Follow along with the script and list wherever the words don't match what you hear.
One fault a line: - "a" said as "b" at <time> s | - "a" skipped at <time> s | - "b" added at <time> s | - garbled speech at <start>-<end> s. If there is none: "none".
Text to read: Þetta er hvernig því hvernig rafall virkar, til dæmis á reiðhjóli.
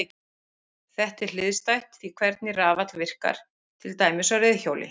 - "hvernig" said as "hliðstætt" at 1.4 s